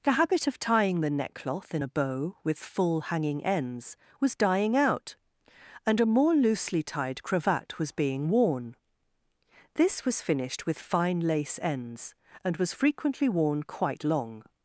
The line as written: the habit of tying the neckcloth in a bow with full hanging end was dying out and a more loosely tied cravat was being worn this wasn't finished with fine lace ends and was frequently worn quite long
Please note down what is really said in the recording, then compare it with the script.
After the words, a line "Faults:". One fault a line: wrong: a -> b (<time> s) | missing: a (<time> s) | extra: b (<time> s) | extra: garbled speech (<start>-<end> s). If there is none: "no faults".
the habit of tying the neckcloth in a bow with full hanging ends was dying out and a more loosely tied cravat was being worn this was finished with fine lace ends and was frequently worn quite long
Faults:
wrong: end -> ends (3.4 s)
wrong: wasn't -> was (10.0 s)